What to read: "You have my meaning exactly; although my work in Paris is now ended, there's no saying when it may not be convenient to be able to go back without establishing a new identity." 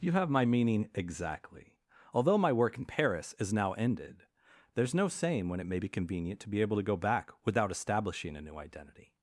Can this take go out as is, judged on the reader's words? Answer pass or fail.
fail